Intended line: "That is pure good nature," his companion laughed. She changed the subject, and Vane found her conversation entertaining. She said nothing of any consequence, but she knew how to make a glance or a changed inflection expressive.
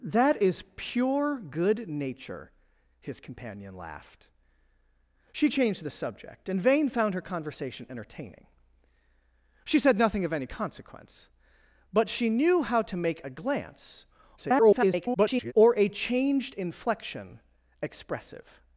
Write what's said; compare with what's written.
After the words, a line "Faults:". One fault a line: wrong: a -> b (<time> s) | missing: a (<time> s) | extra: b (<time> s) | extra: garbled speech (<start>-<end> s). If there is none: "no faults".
"That is pure good nature," his companion laughed. She changed the subject, and Vane found her conversation entertaining. She said nothing of any consequence, but she knew how to make a glance [garbled] or a changed inflection expressive.
Faults:
extra: garbled speech (14.4-15.5 s)